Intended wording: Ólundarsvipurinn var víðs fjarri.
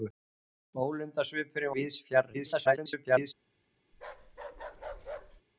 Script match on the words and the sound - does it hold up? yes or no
no